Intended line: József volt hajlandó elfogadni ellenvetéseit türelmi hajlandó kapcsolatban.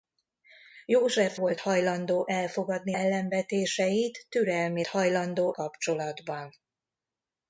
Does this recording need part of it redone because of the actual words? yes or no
no